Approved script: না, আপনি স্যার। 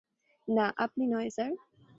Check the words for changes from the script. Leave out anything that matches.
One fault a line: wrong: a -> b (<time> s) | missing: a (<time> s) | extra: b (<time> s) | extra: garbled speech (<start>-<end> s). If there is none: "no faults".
extra: নয় (1.1 s)